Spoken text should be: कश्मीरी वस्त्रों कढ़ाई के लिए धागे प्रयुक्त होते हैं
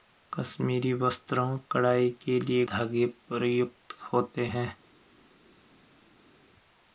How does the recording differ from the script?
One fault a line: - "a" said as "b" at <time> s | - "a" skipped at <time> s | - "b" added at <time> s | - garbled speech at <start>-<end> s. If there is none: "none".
none